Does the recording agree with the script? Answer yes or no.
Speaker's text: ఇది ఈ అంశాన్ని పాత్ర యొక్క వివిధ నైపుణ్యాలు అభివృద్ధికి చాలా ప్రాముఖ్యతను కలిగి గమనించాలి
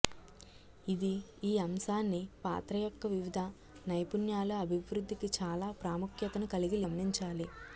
yes